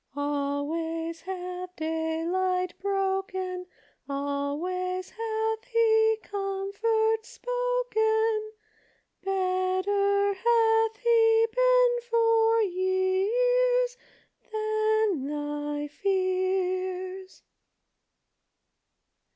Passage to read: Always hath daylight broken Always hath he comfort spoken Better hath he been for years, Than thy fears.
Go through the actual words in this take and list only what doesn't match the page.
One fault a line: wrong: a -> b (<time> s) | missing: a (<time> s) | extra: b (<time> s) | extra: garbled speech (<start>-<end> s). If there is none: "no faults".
no faults